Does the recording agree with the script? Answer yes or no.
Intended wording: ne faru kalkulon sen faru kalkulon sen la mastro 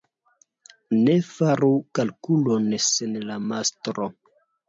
no